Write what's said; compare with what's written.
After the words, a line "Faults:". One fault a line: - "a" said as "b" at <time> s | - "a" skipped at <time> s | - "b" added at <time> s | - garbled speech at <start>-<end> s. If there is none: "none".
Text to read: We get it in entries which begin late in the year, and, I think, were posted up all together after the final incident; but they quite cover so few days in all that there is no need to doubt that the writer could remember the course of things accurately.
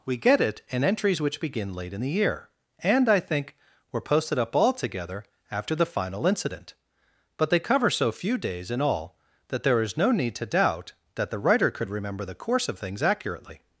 We get it in entries which begin late in the year, and, I think, were posted up all together after the final incident; but they cover so few days in all that there is no need to doubt that the writer could remember the course of things accurately.
Faults:
- "quite" skipped at 7.6 s